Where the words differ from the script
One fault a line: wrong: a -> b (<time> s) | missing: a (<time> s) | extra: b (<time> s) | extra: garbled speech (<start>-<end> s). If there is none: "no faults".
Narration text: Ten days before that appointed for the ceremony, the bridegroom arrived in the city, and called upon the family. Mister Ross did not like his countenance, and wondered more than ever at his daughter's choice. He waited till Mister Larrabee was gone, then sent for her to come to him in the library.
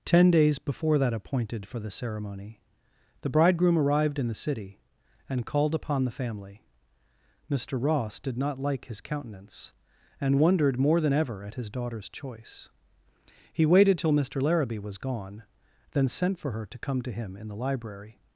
no faults